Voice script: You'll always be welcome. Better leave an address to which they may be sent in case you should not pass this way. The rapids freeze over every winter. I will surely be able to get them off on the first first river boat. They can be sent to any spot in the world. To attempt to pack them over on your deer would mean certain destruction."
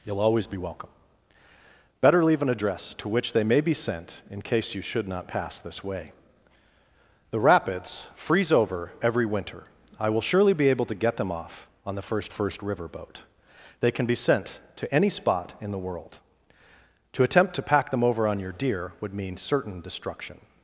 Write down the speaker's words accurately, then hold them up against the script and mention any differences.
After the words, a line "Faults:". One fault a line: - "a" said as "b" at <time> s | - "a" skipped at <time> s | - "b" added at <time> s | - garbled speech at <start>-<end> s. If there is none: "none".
You'll always be welcome. Better leave an address to which they may be sent in case you should not pass this way. The rapids freeze over every winter. I will surely be able to get them off on the first first river boat. They can be sent to any spot in the world. To attempt to pack them over on your deer would mean certain destruction."
Faults:
none